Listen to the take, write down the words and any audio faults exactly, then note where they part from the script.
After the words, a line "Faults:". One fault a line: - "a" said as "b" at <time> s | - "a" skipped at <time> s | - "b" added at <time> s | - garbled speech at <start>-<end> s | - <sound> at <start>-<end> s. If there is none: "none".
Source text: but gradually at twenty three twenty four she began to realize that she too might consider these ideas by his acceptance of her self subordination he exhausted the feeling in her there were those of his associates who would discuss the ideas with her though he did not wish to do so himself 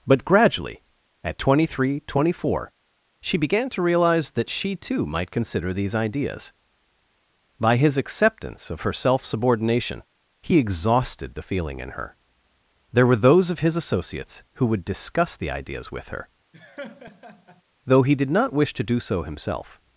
but gradually at twenty three twenty four she began to realize that she too might consider these ideas by his acceptance of her self subordination he exhausted the feeling in her there were those of his associates who would discuss the ideas with her though he did not wish to do so himself
Faults:
- laugh at 16.5-17.6 s